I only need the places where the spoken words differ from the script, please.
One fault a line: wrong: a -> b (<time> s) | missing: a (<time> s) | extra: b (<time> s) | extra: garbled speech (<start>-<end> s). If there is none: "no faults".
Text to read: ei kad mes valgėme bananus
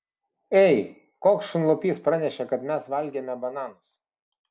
extra: koks šunlupys pranešė (1.2 s)